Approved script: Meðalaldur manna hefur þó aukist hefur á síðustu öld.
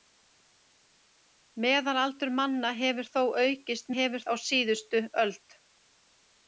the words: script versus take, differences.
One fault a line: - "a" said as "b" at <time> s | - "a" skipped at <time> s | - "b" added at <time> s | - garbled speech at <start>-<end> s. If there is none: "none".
none